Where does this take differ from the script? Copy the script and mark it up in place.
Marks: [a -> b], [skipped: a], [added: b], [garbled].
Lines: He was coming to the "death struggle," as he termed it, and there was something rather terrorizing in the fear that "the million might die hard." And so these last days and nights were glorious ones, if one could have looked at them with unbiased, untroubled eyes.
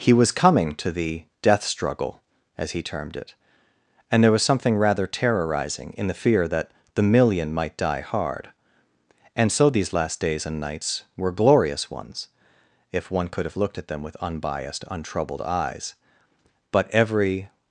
He was coming to the "death struggle," as he termed it, and there was something rather terrorizing in the fear that "the million might die hard." And so these last days and nights were glorious ones, if one could have looked at them with unbiased, untroubled eyes. [added: But every]